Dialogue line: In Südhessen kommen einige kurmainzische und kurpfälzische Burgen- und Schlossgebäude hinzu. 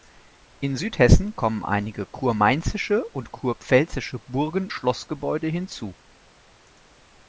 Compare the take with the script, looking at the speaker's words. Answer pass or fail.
fail